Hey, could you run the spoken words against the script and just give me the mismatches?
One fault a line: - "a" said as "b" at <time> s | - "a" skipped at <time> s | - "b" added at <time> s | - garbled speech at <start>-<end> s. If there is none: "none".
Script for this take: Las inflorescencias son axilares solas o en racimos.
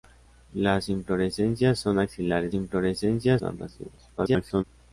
- "solas" said as "inflorescencias" at 2.5 s
- garbled speech at 4.2-4.6 s